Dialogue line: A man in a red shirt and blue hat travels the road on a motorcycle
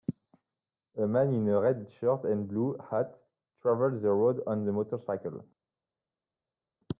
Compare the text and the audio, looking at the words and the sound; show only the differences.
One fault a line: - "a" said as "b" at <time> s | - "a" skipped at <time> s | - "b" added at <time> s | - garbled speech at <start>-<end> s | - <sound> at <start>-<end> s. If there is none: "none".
none